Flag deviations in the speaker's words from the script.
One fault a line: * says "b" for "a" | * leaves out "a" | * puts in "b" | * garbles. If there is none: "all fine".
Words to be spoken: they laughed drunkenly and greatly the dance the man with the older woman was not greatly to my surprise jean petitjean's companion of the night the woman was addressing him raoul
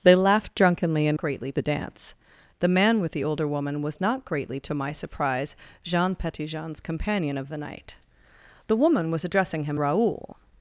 all fine